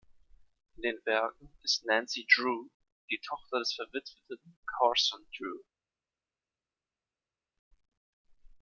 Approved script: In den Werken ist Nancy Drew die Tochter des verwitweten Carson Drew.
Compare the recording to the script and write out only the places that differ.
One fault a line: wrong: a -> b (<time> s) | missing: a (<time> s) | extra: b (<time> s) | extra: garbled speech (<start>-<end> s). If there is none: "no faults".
no faults